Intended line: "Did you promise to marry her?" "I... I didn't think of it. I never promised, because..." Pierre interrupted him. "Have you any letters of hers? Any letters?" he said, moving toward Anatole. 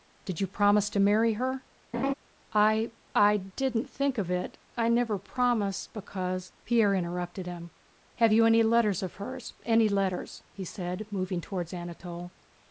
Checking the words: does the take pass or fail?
pass